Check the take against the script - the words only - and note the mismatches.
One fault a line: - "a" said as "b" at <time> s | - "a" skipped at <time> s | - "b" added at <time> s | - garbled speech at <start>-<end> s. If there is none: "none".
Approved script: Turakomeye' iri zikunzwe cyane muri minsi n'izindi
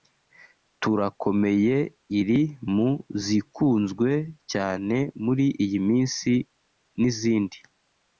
- "mu" added at 2.7 s
- "iyi" added at 5.6 s